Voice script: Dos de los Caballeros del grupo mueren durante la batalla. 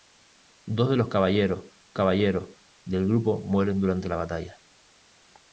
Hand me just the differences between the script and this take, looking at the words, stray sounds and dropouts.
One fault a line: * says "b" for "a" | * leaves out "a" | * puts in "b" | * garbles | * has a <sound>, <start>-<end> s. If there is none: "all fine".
* puts in "Caballeros"